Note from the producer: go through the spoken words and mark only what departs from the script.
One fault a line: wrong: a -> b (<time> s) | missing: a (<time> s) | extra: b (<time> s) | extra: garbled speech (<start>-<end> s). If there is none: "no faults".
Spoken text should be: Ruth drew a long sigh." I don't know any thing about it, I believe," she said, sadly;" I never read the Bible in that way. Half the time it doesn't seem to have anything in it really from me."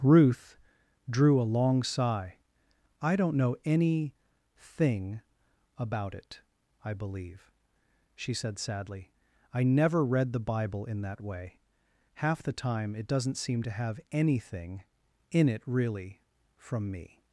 no faults